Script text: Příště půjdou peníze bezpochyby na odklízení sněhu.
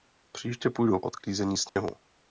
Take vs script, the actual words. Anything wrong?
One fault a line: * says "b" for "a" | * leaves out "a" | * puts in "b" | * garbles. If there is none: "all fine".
* leaves out "peníze bezpochyby na"